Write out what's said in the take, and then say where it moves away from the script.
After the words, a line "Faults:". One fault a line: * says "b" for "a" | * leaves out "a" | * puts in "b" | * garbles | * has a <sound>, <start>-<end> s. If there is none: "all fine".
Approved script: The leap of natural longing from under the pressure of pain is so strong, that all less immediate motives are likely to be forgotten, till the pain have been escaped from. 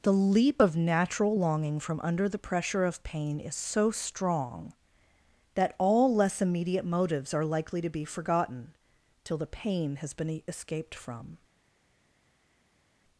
The leap of natural longing from under the pressure of pain is so strong, that all less immediate motives are likely to be forgotten, till the pain has been escaped from.
Faults:
* says "has" for "have"